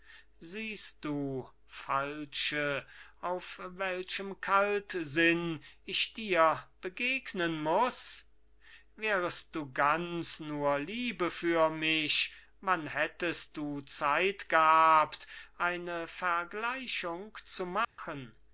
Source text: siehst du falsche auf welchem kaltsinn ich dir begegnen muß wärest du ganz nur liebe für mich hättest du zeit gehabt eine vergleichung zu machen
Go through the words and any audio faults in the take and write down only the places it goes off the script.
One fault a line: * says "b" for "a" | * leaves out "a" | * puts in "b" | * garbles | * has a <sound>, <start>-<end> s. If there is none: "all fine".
* puts in "wann"
* has a dropout, 17.8-18.0 s